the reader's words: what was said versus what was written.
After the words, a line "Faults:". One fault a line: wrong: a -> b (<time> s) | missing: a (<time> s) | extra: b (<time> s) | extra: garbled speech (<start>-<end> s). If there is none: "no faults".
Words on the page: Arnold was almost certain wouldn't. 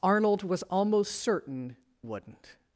Arnold was almost certain wouldn't.
Faults:
no faults